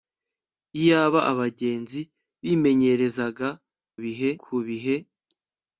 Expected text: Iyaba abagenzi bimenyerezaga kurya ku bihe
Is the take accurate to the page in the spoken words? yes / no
no